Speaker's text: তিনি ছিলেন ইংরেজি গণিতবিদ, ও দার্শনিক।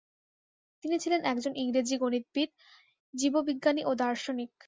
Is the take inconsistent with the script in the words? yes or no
yes